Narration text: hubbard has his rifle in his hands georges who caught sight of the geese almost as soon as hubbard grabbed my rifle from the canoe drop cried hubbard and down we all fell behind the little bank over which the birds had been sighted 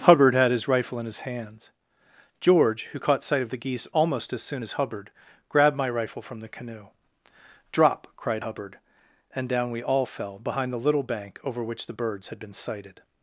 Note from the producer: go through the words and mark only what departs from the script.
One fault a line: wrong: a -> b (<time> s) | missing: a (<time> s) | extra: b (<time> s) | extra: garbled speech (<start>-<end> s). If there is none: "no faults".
wrong: has -> had (0.3 s)
wrong: georges -> george (2.4 s)